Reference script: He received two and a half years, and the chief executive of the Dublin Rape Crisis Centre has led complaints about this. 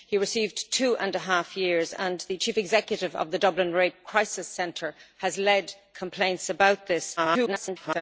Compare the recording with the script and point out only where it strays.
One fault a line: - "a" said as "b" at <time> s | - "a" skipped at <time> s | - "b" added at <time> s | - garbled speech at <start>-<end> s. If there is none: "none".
- garbled speech at 7.2-8.0 s